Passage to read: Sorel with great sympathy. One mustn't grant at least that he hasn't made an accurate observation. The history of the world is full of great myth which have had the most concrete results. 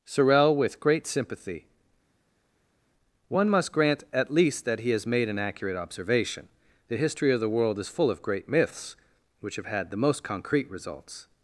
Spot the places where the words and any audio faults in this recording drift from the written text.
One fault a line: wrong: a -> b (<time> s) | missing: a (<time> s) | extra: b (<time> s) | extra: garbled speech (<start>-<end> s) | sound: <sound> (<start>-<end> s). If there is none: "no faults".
wrong: mustn't -> must (3.5 s)
wrong: hasn't -> has (4.9 s)
wrong: myth -> myths (8.5 s)